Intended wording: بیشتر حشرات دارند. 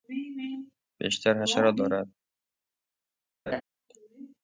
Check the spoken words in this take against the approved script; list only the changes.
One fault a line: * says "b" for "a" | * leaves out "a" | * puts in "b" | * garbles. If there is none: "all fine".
all fine